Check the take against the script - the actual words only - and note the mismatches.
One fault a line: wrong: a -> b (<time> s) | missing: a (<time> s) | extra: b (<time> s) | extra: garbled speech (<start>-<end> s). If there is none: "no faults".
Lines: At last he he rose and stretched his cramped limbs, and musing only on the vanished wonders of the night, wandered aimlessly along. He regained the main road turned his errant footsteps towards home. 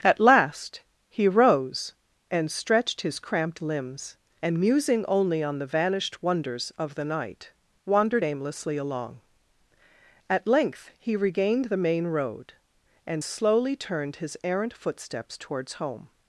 missing: he (1.3 s)
extra: At length (10.3 s)
extra: and slowly (13.0 s)